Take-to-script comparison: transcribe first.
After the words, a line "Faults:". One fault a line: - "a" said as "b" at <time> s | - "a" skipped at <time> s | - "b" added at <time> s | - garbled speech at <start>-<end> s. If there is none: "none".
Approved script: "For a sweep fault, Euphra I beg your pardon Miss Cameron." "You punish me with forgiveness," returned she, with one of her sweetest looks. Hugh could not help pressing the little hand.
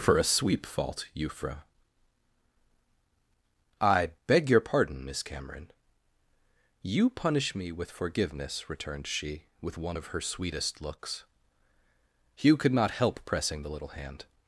"For a sweep fault, Euphra I beg your pardon Miss Cameron." "You punish me with forgiveness," returned she, with one of her sweetest looks. Hugh could not help pressing the little hand.
Faults:
none